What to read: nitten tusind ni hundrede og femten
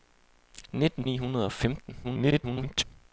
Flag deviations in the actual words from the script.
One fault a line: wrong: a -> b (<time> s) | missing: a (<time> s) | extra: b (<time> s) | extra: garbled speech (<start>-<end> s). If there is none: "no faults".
missing: tusind (1.1 s)
extra: garbled speech (2.0-2.8 s)